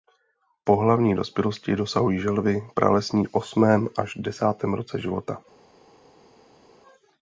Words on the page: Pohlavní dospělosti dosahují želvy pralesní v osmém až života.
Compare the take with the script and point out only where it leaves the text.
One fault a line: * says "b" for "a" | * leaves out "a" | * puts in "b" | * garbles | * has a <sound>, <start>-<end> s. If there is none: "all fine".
* puts in "desátém roce"